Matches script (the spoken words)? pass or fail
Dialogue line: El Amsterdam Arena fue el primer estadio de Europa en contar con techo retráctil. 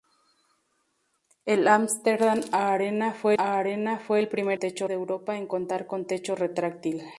fail